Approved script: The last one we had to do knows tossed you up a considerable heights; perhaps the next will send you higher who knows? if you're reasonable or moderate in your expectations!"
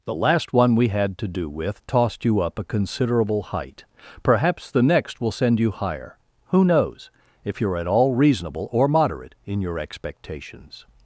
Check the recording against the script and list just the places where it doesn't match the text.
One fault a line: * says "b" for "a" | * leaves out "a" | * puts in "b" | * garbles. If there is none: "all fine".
* says "with" for "knows"
* says "height" for "heights"
* puts in "at all"